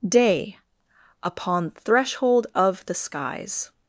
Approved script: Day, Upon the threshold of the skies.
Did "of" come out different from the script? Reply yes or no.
no